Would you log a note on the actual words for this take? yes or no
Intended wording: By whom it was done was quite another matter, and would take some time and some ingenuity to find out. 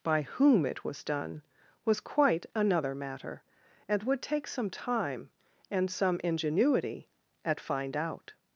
yes